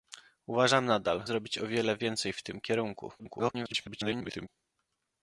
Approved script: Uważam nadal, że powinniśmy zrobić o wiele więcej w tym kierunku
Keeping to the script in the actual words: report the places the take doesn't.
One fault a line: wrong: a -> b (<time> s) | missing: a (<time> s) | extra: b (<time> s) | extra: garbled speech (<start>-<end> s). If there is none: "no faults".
missing: że powinniśmy (1.2 s)
extra: garbled speech (3.2-4.5 s)